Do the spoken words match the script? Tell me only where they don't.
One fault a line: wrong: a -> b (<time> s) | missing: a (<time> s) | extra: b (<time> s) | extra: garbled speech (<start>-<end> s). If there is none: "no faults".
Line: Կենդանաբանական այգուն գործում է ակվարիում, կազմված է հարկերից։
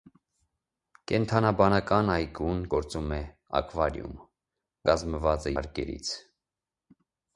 no faults